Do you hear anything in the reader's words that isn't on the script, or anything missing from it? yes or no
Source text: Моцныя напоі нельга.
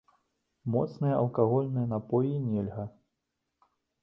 yes